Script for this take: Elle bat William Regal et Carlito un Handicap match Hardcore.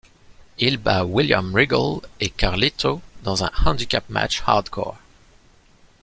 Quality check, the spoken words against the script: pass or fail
fail